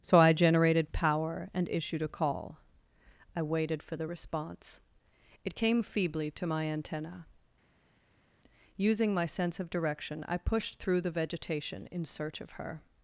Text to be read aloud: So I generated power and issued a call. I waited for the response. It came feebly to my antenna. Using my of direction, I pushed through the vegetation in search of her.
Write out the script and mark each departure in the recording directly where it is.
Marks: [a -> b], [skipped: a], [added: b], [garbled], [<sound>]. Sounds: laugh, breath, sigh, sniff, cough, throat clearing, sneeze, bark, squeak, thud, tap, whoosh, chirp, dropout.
So I generated power and issued a call. I waited for the response. It came feebly to my antenna. Using my [added: sense] of direction, I pushed through the vegetation in search of her.